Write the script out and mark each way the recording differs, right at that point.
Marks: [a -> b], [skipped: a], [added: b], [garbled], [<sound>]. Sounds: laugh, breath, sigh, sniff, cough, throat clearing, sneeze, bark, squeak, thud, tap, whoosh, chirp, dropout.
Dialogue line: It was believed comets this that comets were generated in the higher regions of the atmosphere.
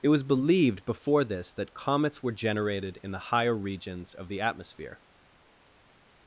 It was believed [comets -> before] this that comets were generated in the higher regions of the atmosphere.